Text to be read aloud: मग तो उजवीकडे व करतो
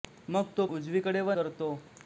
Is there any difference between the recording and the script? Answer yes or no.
no